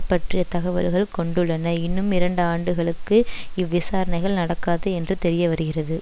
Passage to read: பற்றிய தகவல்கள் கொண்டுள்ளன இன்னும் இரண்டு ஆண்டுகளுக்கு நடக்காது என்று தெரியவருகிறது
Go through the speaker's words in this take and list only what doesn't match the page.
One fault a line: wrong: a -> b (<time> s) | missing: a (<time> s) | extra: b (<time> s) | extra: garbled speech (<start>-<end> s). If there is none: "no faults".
extra: இவ்விசாரணைகள் (3.5 s)